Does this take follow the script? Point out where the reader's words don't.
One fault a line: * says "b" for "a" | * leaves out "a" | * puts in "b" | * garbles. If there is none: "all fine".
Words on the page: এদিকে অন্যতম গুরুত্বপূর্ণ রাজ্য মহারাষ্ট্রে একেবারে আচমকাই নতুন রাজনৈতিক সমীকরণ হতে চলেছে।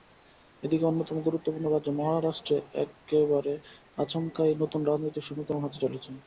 all fine